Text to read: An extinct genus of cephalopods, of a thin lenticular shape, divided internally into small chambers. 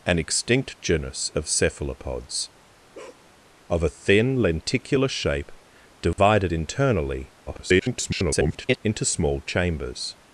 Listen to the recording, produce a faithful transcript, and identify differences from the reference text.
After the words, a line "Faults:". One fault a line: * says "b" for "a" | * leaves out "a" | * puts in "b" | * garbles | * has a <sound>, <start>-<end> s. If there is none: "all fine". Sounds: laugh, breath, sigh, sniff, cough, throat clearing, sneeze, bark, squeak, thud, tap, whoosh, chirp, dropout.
An extinct genus of cephalopods, of a thin lenticular shape, divided internally [garbled] into small chambers.
Faults:
* has a bark, 2.9-3.3 s
* has a dropout, 6.1-6.2 s
* garbles